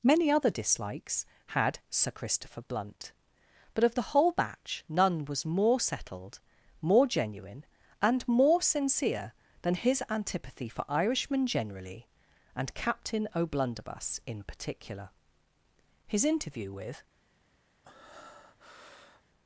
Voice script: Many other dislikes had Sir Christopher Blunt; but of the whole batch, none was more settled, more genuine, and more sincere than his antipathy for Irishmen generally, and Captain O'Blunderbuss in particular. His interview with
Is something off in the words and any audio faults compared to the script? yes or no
yes